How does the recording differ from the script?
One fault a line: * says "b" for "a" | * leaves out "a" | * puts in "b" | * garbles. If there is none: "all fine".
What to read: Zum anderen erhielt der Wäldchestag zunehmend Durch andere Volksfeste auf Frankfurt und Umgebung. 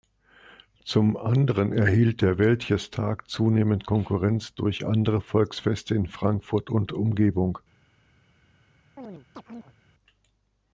* puts in "Konkurrenz"
* says "in" for "auf"